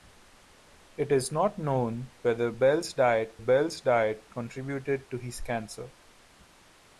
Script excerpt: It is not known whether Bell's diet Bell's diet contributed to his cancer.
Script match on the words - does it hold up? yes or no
yes